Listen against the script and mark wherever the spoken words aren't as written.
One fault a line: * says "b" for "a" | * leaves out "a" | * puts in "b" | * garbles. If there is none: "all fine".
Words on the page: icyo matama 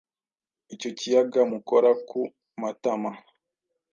* puts in "kiyaga mukora ku"